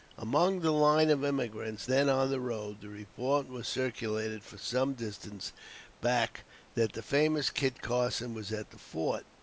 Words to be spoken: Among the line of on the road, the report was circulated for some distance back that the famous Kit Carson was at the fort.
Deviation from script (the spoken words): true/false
true